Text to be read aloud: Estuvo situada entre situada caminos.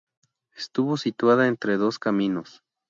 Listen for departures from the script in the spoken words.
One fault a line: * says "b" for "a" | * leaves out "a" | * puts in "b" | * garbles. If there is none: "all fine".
* says "dos" for "situada"